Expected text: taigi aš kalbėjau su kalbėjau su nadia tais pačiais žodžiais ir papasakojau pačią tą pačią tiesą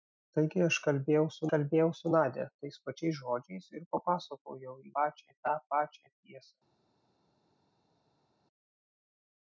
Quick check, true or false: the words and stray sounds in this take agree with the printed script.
true